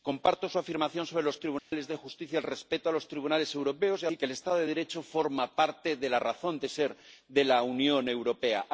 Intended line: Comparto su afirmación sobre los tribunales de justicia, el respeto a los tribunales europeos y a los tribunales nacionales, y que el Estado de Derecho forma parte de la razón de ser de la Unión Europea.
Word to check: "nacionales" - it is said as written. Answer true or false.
false